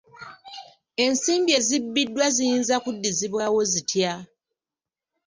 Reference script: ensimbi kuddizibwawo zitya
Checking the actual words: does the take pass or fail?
fail